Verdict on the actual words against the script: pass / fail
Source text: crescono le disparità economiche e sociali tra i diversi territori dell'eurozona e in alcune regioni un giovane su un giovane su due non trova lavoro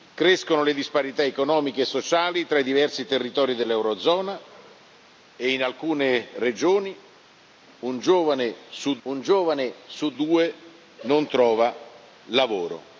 pass